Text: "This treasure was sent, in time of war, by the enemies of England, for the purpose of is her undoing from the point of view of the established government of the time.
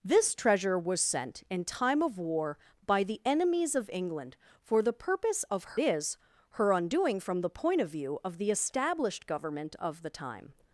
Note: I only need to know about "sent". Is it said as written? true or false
true